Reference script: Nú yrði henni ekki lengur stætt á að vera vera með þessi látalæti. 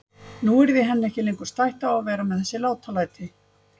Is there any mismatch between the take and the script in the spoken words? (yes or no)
yes